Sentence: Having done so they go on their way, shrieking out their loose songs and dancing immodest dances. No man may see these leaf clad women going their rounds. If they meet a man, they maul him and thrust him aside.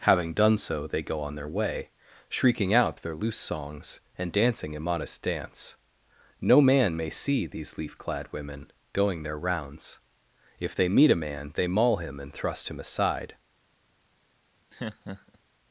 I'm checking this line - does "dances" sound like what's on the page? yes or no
no